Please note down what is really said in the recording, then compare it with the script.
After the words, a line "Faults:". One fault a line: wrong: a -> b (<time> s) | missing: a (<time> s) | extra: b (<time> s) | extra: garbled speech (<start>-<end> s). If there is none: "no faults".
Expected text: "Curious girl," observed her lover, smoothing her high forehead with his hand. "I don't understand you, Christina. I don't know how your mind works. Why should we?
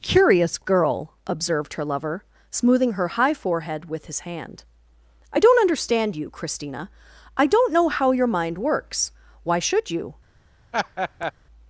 "Curious girl," observed her lover, smoothing her high forehead with his hand. "I don't understand you, Christina. I don't know how your mind works. Why should you?
Faults:
wrong: we -> you (9.9 s)